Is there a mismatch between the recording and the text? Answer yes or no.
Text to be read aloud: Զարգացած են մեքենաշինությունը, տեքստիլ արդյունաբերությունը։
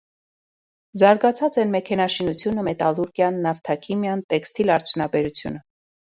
yes